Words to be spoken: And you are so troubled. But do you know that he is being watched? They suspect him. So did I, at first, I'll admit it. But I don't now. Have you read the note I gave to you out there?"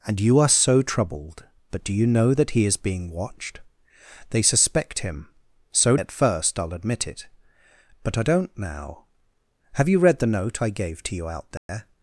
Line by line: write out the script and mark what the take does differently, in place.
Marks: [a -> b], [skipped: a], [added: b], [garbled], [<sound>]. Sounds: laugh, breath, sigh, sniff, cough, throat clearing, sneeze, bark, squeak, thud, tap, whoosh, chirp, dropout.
And you are so troubled. But do you know that he is being watched? They suspect him. So [skipped: did I,] at first, I'll admit it. But I don't now. Have you read the note I gave to you out there?" [dropout]